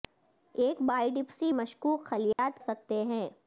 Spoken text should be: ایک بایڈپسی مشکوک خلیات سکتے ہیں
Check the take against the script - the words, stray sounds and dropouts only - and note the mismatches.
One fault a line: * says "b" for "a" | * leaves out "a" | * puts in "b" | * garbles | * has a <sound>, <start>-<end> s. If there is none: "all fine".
* has a dropout, 2.3-2.4 s